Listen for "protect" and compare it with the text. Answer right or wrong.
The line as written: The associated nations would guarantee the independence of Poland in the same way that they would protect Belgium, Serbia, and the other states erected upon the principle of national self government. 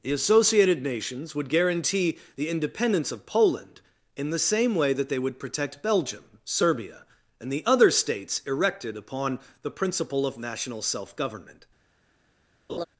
right